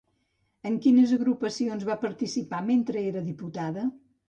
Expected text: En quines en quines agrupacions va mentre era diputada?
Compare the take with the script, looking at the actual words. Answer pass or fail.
fail